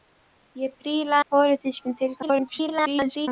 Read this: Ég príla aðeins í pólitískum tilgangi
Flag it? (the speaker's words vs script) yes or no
yes